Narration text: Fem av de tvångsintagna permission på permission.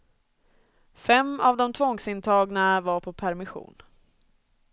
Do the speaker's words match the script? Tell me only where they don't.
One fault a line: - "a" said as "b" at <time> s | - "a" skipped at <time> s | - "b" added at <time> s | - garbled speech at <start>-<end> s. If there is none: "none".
- "permission" said as "var" at 2.8 s